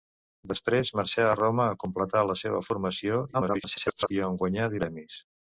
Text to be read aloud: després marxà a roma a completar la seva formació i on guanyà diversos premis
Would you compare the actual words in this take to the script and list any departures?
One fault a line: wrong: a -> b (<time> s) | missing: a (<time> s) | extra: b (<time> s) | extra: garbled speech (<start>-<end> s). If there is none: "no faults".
extra: garbled speech (3.3-4.1 s)
missing: diversos (4.7 s)